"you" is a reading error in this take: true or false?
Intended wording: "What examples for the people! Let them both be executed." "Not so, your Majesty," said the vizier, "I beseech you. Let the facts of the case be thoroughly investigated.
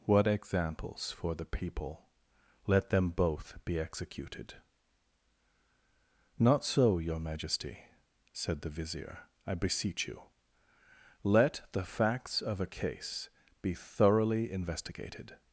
false